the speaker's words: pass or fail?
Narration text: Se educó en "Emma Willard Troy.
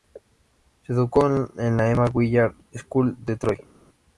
fail